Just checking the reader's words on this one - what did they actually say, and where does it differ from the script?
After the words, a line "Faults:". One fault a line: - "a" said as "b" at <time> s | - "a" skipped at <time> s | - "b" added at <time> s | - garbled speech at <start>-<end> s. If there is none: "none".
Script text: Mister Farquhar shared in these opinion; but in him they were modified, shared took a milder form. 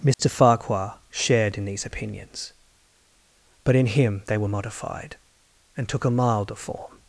Mister Farquhar shared in these opinions; but in him they were modified, and took a milder form.
Faults:
- "opinion" said as "opinions" at 1.9 s
- "shared" said as "and" at 5.8 s